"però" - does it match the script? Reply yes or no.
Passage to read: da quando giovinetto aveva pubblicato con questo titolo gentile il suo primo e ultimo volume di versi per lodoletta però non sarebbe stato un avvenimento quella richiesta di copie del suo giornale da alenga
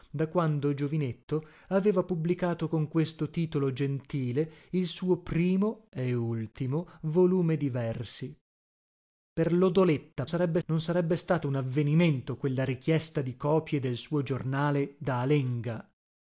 no